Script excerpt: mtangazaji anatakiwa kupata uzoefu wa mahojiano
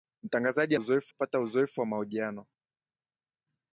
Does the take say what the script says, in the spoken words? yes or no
no